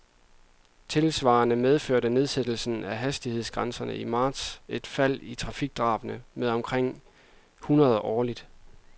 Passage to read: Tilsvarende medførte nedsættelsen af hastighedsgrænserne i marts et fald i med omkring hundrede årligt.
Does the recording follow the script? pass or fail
fail